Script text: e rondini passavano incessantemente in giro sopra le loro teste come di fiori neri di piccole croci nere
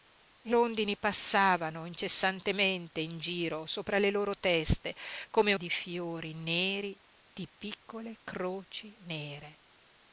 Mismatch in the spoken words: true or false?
false